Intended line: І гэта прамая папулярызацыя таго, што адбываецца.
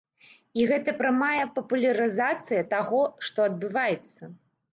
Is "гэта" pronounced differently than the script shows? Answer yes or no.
no